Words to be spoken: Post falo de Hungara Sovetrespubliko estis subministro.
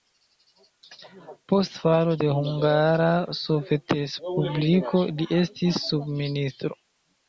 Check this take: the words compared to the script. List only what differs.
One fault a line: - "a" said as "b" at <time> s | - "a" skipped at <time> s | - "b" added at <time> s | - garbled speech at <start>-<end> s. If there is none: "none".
- "li" added at 5.2 s